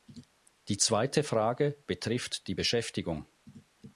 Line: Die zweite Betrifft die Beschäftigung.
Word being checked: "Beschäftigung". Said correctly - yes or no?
yes